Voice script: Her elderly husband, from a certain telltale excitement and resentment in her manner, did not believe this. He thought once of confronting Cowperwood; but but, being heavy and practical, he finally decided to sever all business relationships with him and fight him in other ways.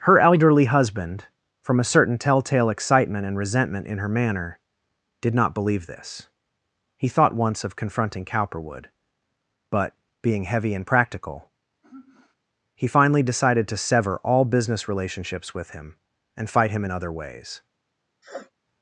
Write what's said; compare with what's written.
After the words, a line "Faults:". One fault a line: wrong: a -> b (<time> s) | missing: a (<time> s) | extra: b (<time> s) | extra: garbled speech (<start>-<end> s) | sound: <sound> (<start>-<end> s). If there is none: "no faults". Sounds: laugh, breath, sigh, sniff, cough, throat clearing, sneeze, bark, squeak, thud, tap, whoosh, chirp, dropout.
Her elderly husband, from a certain telltale excitement and resentment in her manner, did not believe this. He thought once of confronting Cowperwood; but, being heavy and practical, he finally decided to sever all business relationships with him and fight him in other ways.
Faults:
missing: but (9.9 s)
sound: sigh (11.8-12.4 s)
sound: sniff (18.2-18.5 s)